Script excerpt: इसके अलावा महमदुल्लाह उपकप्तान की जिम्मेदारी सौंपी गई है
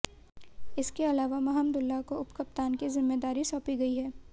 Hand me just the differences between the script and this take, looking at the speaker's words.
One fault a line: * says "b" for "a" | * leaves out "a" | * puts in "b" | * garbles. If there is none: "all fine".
* puts in "को"